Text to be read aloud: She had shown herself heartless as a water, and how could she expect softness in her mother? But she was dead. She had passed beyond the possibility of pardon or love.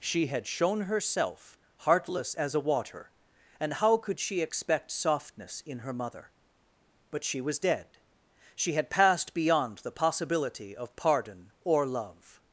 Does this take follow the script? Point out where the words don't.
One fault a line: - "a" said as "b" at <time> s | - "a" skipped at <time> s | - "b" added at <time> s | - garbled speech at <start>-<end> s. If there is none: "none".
none